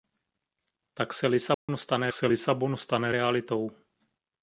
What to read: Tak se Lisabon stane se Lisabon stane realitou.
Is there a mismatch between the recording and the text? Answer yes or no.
no